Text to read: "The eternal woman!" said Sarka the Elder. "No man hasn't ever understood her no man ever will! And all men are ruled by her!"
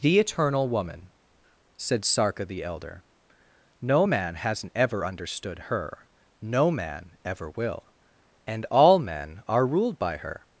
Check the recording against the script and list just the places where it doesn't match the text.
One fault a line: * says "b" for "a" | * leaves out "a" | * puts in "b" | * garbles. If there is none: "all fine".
all fine